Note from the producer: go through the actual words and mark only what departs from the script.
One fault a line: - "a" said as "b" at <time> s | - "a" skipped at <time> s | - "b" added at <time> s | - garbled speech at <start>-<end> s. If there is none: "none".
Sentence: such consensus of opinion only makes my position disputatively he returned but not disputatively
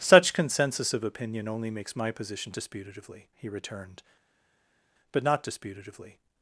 none